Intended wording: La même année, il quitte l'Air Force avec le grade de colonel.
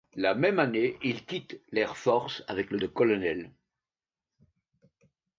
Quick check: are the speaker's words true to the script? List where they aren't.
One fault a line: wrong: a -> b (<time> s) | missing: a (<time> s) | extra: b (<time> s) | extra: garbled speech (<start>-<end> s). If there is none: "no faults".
missing: grade (2.8 s)